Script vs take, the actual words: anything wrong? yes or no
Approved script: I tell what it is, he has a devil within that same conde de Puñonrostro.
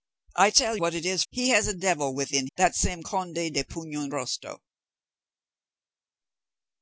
no